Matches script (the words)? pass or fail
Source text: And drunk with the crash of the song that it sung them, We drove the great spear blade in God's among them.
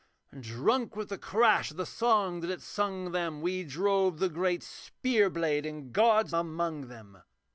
pass